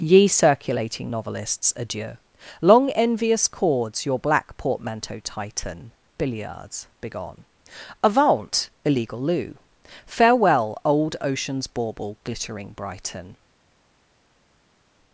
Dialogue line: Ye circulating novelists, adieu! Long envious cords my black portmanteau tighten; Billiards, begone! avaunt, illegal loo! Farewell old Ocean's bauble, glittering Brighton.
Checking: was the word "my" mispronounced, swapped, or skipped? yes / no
yes